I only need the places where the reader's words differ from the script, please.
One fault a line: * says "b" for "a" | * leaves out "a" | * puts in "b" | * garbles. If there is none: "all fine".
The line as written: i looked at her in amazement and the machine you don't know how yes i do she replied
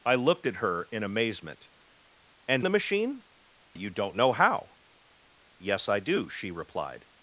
all fine